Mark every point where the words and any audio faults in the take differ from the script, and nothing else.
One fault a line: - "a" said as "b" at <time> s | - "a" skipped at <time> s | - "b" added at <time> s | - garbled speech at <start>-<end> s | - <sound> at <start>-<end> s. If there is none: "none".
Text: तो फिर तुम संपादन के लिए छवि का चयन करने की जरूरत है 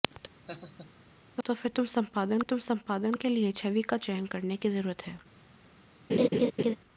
- laugh at 0.5-0.9 s
- "तुम संपादन" added at 2.5 s
- laugh at 6.1-6.8 s